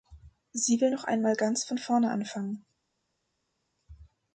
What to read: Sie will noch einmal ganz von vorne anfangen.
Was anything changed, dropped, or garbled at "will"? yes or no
no